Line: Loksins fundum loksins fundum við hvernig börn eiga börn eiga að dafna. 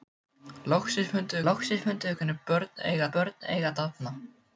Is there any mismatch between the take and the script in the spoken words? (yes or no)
no